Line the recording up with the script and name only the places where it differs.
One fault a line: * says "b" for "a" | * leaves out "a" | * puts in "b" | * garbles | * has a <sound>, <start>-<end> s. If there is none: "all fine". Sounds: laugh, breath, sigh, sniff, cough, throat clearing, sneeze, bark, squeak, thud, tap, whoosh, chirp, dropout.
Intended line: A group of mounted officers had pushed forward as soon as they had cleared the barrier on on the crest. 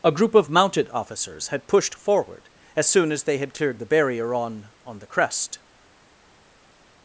all fine